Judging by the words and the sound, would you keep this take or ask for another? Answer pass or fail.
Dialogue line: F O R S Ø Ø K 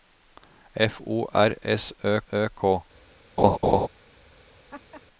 fail